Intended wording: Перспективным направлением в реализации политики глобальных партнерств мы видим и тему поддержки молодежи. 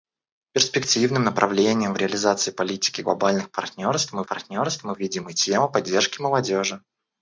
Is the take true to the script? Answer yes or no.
no